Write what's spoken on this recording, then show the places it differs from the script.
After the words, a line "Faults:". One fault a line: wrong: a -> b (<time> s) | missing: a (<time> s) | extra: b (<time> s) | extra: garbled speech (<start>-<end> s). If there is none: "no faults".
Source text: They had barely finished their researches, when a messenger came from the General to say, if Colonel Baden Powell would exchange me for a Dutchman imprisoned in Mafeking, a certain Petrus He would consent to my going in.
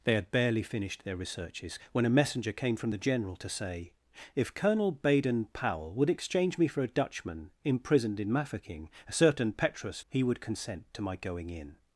They had barely finished their researches, when a messenger came from the General to say, if Colonel Baden Powell would exchange me for a Dutchman imprisoned in Mafeking, a certain Petrus He would consent to my going in.
Faults:
no faults